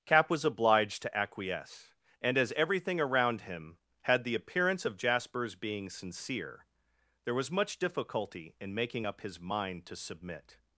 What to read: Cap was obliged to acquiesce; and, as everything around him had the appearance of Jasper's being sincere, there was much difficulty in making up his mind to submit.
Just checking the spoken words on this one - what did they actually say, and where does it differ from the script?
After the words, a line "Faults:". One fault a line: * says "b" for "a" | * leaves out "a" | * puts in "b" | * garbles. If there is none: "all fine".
Cap was obliged to acquiesce; and, as everything around him had the appearance of Jasper's being sincere, there was much difficulty in making up his mind to submit.
Faults:
all fine